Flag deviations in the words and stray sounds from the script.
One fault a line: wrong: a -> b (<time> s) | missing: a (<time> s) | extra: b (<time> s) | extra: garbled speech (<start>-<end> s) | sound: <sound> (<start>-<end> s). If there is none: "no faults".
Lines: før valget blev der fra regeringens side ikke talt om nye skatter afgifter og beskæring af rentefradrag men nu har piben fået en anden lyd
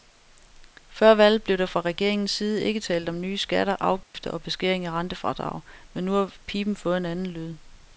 sound: dropout (4.0-4.1 s)